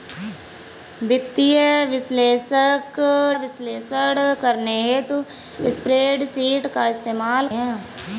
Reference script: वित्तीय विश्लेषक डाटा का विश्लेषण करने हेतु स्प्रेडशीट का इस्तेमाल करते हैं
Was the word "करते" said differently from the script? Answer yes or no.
yes